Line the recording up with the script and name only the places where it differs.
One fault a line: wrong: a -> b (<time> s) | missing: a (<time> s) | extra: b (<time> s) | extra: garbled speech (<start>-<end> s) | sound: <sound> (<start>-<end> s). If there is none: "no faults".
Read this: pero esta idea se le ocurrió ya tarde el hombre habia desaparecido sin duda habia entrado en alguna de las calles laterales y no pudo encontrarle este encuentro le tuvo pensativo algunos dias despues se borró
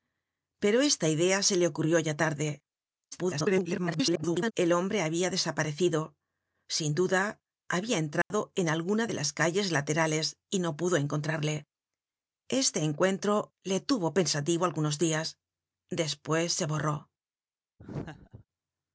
extra: garbled speech (3.1-4.5 s)
sound: dropout (8.2-8.3 s)
sound: laugh (17.8-18.5 s)